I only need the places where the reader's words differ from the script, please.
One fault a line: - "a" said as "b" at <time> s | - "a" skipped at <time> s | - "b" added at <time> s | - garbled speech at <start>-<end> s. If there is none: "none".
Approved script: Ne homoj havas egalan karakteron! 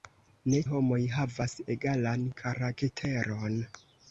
none